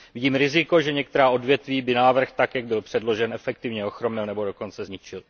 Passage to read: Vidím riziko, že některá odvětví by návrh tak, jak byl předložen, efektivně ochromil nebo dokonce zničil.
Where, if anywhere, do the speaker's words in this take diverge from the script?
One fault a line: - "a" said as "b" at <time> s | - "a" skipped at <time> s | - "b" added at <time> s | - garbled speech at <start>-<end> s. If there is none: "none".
none